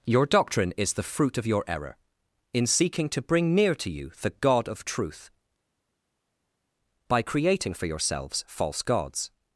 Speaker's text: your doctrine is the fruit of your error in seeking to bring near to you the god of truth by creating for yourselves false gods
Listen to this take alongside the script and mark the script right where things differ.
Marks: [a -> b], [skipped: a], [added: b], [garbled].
your doctrine is the fruit of your error in seeking to bring near to you the god of truth by creating for yourselves false gods